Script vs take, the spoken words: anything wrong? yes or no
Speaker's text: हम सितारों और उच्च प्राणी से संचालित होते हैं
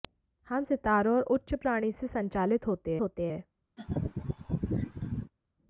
yes